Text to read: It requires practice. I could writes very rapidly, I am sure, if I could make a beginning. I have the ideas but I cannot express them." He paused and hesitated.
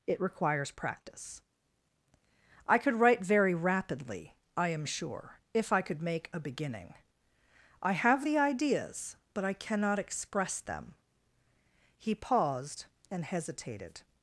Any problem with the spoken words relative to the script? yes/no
yes